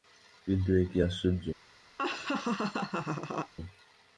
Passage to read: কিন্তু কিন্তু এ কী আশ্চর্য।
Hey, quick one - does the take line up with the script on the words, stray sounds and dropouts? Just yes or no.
no